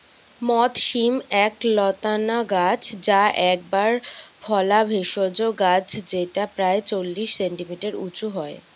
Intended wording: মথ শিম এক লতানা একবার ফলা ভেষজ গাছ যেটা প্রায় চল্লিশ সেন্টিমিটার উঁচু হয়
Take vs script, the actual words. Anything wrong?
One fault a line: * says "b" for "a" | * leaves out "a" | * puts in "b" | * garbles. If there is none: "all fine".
* puts in "গাছ যা"